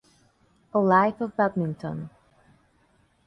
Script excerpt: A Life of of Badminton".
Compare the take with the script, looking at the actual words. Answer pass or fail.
fail